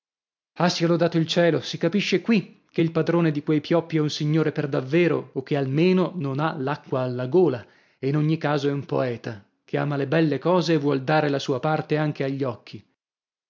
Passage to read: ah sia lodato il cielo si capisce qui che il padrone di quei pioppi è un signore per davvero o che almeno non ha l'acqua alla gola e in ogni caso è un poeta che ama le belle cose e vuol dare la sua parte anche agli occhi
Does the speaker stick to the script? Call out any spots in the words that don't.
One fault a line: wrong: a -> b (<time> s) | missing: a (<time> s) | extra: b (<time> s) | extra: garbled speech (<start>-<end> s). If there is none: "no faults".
no faults